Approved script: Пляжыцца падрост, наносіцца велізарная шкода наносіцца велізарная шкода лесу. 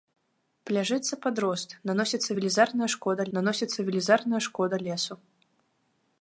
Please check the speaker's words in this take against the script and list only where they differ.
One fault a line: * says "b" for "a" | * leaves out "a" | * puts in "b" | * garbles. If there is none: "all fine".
all fine